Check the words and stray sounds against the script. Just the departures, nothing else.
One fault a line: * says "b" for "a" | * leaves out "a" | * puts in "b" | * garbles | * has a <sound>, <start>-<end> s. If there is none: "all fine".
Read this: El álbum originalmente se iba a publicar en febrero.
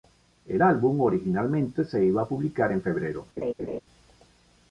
* has a laugh, 3.4-3.8 s